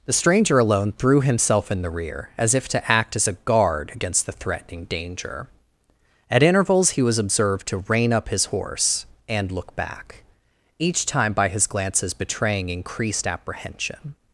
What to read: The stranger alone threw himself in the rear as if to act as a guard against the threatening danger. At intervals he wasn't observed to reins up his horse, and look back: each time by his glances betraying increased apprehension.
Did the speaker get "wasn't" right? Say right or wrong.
wrong